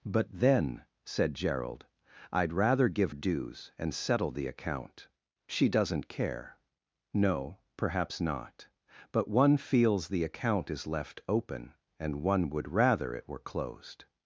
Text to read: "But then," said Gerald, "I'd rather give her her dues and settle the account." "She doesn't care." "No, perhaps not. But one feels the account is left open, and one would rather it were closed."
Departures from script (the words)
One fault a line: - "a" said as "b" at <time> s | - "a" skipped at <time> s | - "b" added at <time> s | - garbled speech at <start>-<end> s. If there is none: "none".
- "her her" skipped at 3.1 s